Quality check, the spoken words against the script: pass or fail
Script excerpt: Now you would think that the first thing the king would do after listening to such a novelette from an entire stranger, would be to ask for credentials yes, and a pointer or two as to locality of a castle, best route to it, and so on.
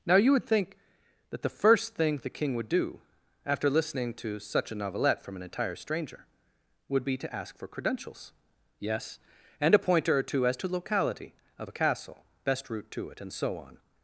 pass